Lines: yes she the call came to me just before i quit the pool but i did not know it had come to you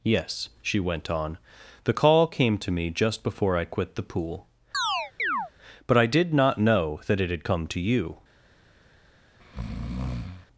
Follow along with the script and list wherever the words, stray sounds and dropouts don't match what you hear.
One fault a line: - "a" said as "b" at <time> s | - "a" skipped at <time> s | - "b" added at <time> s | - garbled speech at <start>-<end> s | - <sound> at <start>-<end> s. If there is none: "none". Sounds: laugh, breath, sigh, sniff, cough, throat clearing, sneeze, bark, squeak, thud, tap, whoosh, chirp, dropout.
- "went on" added at 0.8 s
- chirp at 4.7-5.5 s
- "that" added at 7.1 s
- breath at 9.4-10.5 s